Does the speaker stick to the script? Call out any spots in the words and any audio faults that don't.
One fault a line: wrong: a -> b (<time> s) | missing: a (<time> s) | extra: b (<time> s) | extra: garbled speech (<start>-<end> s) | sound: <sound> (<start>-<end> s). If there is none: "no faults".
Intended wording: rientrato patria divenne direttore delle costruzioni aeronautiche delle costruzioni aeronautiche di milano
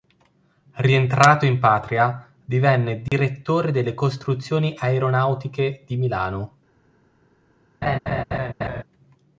extra: in (1.4 s)
sound: dropout (3.1-3.1 s)
missing: delle costruzioni aeronautiche (5.8 s)
sound: laugh (7.8-8.8 s)